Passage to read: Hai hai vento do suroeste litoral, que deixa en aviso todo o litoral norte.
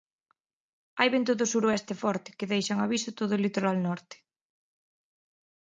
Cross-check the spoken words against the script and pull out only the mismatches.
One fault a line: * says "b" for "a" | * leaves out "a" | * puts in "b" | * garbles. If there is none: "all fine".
* leaves out "hai"
* says "forte" for "litoral"